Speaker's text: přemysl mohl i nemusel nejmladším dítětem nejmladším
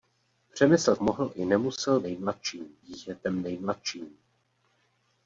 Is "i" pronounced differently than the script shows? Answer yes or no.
no